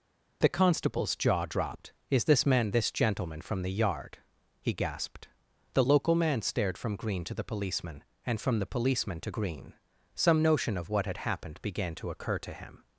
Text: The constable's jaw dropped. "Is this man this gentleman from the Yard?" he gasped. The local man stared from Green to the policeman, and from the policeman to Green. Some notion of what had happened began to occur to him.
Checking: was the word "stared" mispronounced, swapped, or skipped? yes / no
no